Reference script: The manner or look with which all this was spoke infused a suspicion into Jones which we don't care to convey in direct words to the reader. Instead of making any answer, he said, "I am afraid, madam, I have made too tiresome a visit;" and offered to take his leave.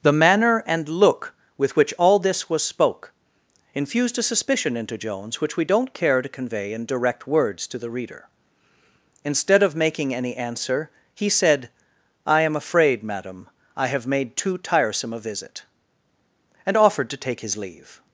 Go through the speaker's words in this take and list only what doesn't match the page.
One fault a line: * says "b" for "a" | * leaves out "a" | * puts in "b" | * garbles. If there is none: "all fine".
* says "and" for "or"